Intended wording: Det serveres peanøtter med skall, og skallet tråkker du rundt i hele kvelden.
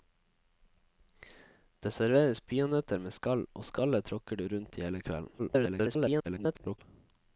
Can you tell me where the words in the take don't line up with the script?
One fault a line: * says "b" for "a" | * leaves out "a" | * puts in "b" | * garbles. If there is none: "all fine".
* garbles